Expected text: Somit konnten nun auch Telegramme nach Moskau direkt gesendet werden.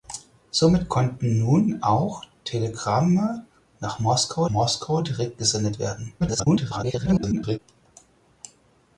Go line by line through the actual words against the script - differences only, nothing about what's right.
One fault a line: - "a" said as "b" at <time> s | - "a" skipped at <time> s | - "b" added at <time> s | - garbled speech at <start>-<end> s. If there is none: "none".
- "Moskau" added at 4.5 s
- garbled speech at 6.2-7.6 s